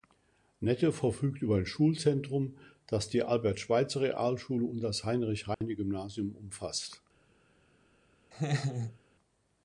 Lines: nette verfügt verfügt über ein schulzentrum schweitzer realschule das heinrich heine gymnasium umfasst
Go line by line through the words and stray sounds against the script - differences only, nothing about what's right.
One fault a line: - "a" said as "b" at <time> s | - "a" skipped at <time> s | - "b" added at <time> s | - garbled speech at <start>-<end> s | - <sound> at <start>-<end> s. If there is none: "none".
- "verfügt" skipped at 1.4 s
- "das die albert" added at 2.9 s
- "und" added at 4.7 s
- dropout at 5.5-5.6 s
- laugh at 8.3-9.0 s